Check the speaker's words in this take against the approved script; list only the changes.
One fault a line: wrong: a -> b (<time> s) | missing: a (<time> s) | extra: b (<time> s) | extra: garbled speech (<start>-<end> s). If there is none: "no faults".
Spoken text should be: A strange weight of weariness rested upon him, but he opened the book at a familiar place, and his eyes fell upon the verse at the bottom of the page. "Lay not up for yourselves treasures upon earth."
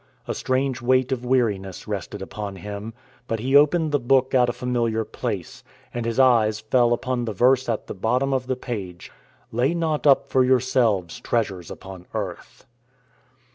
no faults